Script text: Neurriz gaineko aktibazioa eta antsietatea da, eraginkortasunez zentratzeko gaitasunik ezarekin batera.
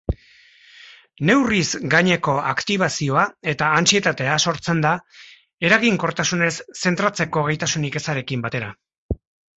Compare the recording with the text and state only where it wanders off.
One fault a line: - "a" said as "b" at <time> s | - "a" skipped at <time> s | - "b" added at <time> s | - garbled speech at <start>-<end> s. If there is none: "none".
- "sortzen" added at 4.5 s